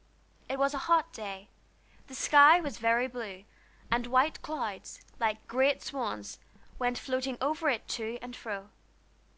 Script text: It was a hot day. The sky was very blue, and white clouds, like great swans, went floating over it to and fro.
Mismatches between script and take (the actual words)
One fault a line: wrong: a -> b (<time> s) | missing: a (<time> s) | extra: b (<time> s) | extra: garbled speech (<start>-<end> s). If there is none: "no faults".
no faults